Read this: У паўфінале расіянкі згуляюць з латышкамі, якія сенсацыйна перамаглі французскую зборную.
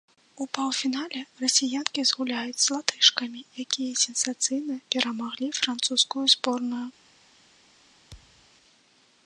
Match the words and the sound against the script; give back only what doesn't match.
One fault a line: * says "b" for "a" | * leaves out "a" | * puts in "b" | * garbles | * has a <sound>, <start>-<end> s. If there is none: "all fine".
* has a thud, 8.1-8.5 s